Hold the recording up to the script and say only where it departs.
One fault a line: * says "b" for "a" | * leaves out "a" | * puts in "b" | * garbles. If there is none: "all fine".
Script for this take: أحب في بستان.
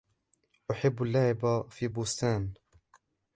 * puts in "اللعب"